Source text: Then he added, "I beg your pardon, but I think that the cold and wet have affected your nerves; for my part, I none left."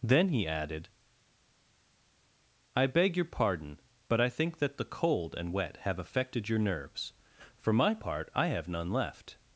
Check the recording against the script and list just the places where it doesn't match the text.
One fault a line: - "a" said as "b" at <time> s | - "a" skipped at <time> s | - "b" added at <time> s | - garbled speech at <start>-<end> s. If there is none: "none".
- "have" added at 8.5 s